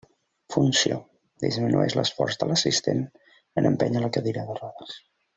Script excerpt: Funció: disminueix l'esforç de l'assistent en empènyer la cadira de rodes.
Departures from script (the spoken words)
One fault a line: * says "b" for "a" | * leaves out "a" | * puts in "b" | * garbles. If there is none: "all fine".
all fine